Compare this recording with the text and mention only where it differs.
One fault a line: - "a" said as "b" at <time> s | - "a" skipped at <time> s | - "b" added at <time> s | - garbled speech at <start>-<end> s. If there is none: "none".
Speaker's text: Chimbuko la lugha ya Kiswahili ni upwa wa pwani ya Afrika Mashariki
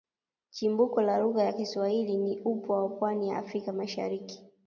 none